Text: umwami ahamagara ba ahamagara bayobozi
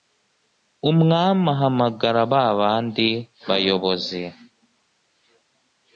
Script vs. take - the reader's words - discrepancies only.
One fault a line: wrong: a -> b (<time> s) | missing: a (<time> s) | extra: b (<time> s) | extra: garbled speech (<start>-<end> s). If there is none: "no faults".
wrong: ahamagara -> bandi (2.6 s)